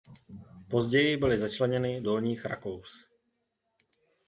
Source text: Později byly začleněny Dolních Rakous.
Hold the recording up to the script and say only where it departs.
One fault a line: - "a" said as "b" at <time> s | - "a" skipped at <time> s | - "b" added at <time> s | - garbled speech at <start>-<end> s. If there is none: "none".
none